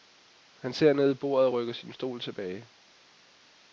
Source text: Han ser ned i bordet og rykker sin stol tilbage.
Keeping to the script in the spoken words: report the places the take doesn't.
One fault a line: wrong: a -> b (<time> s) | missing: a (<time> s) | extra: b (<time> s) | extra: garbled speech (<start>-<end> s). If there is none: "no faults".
no faults